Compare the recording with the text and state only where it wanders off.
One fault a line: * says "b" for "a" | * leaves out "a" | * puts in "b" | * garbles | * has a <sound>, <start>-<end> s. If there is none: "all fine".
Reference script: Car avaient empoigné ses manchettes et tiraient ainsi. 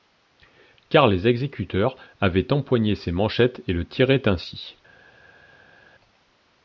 * puts in "les exécuteurs"
* puts in "le"